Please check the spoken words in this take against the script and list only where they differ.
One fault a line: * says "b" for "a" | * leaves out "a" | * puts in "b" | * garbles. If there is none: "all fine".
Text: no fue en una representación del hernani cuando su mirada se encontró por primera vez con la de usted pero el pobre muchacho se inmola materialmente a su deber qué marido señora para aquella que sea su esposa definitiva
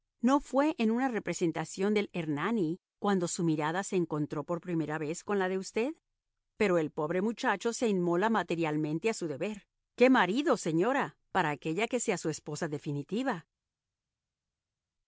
all fine